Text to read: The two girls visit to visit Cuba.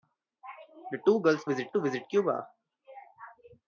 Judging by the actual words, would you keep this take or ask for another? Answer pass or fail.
pass